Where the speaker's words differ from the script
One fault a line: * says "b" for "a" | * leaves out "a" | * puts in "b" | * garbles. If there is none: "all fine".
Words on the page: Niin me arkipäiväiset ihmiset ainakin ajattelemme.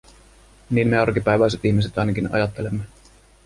all fine